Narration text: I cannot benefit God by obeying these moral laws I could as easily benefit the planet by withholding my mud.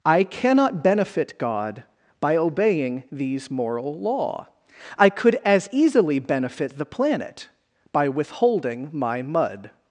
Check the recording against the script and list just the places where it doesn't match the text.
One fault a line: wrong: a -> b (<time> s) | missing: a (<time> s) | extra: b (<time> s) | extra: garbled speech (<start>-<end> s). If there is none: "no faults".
wrong: laws -> law (4.0 s)